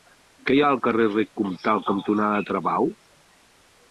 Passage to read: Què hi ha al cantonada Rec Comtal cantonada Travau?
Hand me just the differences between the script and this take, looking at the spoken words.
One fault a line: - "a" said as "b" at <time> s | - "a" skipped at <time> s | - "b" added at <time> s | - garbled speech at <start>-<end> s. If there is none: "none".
- "cantonada" said as "carrer" at 0.9 s